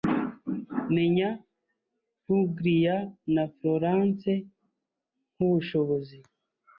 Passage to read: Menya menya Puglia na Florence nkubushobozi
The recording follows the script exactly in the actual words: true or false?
false